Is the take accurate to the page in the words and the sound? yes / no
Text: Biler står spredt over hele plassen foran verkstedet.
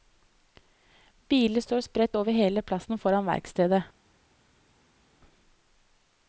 yes